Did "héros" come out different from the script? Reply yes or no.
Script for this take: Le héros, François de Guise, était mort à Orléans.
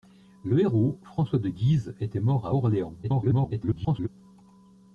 no